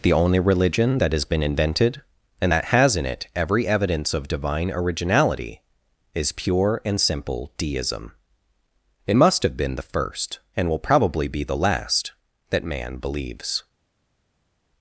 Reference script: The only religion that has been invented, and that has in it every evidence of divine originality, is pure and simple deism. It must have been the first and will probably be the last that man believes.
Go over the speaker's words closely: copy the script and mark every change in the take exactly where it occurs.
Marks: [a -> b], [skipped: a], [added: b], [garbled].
The only religion that has been invented, and that has in it every evidence of divine originality, is pure and simple deism. It must have been the first and will probably be the last that man believes.